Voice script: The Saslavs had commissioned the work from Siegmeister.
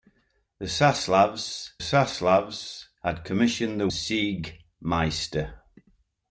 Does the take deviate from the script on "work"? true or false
true